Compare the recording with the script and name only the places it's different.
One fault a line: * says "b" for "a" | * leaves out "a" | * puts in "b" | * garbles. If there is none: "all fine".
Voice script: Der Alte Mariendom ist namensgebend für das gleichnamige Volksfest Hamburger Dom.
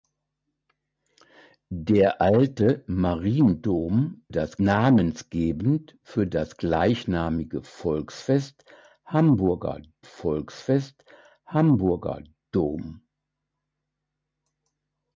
* says "das" for "ist"
* puts in "Volksfest Hamburger"